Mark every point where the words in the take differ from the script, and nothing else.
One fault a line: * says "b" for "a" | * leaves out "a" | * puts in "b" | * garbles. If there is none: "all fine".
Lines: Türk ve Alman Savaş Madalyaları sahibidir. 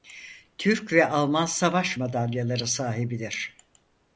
all fine